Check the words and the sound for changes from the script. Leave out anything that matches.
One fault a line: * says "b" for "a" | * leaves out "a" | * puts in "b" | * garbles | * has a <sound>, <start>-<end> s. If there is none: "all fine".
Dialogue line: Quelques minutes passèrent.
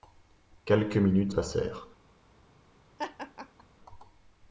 * has a laugh, 3.0-3.6 s